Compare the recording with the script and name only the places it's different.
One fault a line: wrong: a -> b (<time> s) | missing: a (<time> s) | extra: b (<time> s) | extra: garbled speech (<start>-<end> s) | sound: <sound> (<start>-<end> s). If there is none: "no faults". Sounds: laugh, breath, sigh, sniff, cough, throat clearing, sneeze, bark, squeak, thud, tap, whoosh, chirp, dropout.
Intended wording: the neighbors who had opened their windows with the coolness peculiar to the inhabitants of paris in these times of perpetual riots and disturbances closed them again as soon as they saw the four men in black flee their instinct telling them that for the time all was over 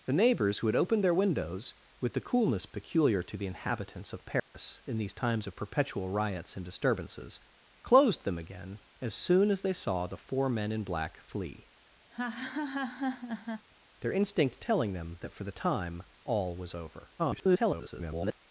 sound: dropout (4.4-4.5 s)
sound: laugh (12.1-13.7 s)
extra: garbled speech (17.2-18.4 s)